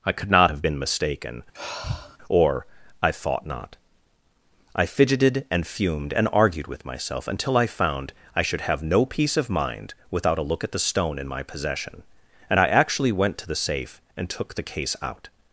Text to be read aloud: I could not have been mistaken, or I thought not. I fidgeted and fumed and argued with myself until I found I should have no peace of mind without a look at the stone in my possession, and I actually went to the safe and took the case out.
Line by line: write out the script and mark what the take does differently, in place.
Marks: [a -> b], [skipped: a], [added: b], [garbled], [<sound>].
I could not have been mistaken, [sigh] or I thought not. I fidgeted and fumed and argued with myself until I found I should have no peace of mind without a look at the stone in my possession, and I actually went to the safe and took the case out.